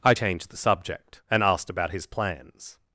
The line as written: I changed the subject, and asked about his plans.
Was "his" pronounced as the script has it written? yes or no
yes